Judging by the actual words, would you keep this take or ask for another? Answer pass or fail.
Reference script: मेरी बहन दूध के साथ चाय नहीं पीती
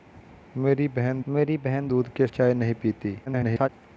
fail